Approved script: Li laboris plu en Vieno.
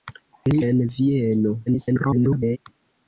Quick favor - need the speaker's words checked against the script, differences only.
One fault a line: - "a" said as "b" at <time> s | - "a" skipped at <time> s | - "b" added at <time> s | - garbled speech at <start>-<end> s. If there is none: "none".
- "laboris plu" skipped at 0.6 s
- garbled speech at 1.7-2.6 s